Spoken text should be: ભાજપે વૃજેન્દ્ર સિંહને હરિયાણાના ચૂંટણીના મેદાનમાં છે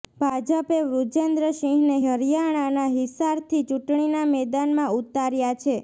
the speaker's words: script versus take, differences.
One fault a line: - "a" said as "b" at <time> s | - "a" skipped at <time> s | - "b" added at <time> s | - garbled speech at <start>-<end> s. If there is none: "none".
- "હિસારથી" added at 2.9 s
- "ઉતાર્યા" added at 5.0 s